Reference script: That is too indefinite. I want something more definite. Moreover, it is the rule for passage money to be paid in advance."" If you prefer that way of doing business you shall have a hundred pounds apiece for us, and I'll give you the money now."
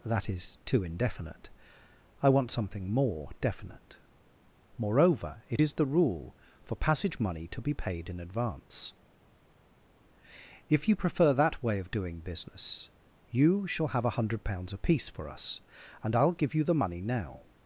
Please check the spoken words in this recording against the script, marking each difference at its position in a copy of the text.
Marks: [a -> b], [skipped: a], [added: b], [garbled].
That is too indefinite. I want something more definite. Moreover, it is the rule for passage money to be paid in advance."" If you prefer that way of doing business you shall have a hundred pounds apiece for us, and I'll give you the money now."